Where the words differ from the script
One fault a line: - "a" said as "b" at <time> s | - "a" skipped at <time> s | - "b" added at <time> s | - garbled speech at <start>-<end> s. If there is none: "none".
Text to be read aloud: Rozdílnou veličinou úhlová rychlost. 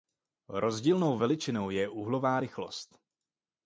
- "je" added at 1.7 s